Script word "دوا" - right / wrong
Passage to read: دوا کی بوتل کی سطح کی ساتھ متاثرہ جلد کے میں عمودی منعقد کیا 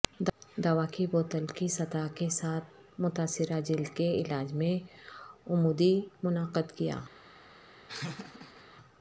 right